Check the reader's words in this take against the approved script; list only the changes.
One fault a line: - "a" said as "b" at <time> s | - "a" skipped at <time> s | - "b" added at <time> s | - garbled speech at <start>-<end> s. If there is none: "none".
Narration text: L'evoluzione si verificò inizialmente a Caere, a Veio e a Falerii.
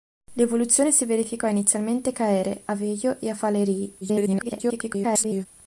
- garbled speech at 4.0-5.5 s